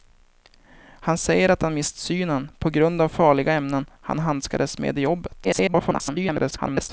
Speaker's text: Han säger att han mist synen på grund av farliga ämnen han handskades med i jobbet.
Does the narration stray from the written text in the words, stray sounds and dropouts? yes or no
yes